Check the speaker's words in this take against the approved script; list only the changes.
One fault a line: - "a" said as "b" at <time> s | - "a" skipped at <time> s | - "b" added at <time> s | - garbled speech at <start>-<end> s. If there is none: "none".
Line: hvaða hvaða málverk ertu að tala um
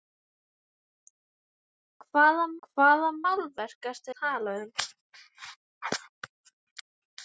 none